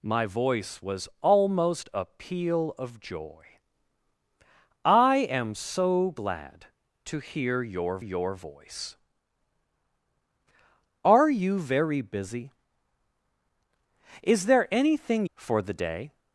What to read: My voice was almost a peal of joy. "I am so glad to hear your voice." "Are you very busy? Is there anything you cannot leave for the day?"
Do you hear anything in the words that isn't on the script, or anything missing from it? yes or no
yes